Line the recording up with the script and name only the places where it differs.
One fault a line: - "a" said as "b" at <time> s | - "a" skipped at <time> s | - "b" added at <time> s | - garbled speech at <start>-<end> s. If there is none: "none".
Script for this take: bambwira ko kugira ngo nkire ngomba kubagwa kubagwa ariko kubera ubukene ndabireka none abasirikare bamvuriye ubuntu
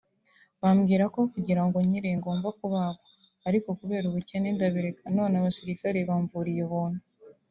- "kubagwa" skipped at 3.0 s